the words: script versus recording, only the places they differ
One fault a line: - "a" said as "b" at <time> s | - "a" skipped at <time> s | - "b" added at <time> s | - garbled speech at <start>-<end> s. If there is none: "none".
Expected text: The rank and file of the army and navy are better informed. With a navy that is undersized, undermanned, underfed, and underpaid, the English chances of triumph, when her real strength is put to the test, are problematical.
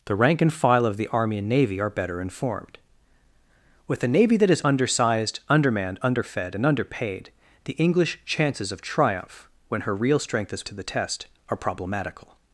- "put" skipped at 10.6 s